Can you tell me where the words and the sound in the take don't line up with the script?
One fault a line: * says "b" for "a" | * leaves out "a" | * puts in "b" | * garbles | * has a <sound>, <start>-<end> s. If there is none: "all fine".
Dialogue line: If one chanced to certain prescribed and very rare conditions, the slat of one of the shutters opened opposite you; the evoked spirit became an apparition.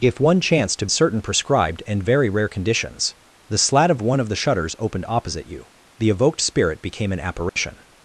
* has a dropout, 7.5-7.6 s